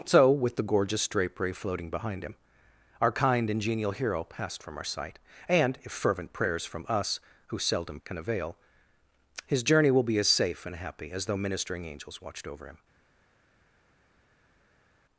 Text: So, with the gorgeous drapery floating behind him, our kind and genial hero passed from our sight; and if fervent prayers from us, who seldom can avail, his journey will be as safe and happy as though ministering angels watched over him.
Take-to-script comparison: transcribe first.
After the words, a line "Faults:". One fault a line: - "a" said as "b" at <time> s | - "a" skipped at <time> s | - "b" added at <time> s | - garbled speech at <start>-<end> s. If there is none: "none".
So, with the gorgeous drapery floating behind him, our kind and genial hero passed from our sight; and if fervent prayers from us, who seldom can avail, his journey will be as safe and happy as though ministering angels watched over him.
Faults:
none